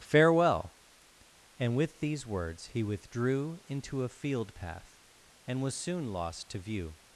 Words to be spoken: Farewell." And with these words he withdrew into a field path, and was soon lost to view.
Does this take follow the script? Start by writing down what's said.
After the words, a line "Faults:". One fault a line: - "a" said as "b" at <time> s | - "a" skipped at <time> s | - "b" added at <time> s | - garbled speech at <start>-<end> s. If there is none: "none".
Farewell." And with these words he withdrew into a field path, and was soon lost to view.
Faults:
none